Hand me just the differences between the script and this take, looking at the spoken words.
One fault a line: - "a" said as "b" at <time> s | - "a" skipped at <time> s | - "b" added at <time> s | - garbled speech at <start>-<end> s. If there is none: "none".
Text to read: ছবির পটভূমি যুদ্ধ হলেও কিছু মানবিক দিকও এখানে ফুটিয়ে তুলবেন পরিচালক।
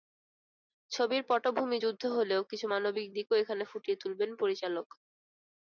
none